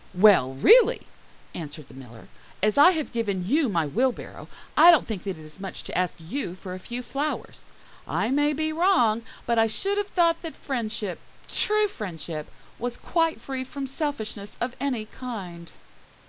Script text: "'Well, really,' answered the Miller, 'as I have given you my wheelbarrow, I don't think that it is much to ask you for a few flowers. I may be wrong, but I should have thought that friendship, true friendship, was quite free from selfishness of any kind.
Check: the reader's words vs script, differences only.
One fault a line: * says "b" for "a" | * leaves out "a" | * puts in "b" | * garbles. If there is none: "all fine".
all fine